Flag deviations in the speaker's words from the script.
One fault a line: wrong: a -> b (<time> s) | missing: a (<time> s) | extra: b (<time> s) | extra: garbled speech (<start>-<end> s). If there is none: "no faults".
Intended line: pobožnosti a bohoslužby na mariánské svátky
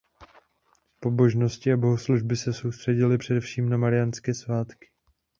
extra: se soustředily především (2.4 s)